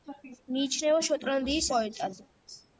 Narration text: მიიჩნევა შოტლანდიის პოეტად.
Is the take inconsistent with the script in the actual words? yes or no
no